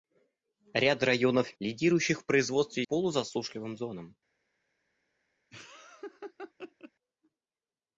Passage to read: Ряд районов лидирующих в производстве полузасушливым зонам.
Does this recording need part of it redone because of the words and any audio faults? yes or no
yes